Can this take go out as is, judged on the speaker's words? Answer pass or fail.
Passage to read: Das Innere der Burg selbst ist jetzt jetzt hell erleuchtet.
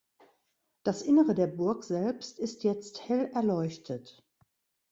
fail